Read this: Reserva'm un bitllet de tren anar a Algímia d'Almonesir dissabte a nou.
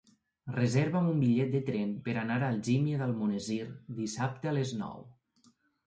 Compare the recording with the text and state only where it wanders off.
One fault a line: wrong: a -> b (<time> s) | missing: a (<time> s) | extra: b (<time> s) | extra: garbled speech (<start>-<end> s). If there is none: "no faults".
extra: per (2.1 s)
extra: les (4.6 s)